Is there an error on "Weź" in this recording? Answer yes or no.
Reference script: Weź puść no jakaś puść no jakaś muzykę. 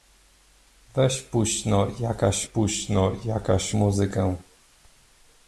no